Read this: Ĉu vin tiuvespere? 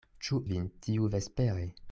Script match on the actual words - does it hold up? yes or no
yes